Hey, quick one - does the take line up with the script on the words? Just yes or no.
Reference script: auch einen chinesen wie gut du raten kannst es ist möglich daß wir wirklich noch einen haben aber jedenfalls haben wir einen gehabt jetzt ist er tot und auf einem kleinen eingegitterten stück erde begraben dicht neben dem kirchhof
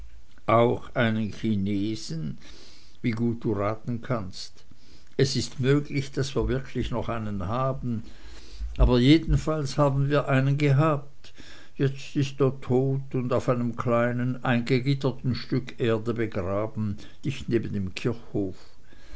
yes